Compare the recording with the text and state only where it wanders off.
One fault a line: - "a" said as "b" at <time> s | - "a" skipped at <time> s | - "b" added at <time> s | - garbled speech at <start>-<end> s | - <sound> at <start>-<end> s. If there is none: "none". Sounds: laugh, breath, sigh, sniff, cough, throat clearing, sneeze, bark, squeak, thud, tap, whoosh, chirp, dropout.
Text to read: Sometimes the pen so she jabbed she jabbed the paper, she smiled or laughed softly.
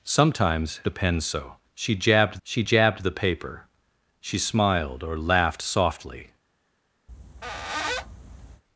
- squeak at 7.1-8.6 s